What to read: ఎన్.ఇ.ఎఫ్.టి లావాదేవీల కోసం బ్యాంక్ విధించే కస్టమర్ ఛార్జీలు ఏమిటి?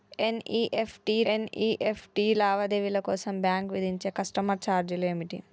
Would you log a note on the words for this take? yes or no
yes